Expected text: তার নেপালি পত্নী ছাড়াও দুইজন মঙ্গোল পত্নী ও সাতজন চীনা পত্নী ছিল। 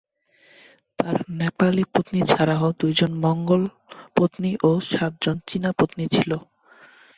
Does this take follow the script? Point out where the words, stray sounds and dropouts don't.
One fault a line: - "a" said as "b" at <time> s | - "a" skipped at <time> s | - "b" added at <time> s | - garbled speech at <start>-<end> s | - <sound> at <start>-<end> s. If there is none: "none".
none